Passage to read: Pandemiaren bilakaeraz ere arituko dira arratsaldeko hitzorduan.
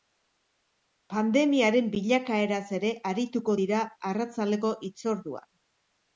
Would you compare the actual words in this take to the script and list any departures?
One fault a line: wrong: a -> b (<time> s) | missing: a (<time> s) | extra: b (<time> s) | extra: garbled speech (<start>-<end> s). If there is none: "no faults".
no faults